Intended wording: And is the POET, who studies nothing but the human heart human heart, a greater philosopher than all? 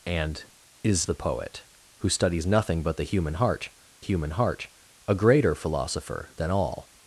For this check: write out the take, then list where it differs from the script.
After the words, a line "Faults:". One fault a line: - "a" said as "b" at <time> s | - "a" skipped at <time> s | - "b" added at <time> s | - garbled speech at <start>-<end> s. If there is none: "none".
And is the POET, who studies nothing but the human heart human heart, a greater philosopher than all?
Faults:
none